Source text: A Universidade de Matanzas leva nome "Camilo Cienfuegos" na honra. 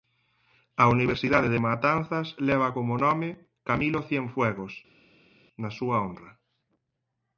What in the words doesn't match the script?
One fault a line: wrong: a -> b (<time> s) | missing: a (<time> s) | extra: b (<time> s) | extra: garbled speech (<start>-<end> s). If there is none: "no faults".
extra: como (2.7 s)
extra: súa (5.8 s)